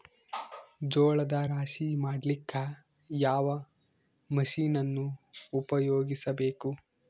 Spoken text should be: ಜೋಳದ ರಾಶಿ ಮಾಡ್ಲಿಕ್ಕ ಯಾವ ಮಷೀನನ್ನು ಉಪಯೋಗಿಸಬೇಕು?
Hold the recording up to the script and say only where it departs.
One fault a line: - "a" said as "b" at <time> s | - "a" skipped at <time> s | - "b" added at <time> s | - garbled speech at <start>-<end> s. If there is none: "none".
none